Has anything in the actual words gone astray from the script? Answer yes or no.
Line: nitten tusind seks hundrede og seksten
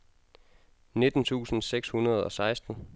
no